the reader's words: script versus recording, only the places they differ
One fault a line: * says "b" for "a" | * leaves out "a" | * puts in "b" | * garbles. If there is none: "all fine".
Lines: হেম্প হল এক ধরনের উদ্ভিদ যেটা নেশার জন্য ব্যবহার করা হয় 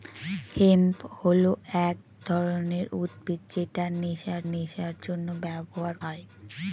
* puts in "নেশার"
* leaves out "করা"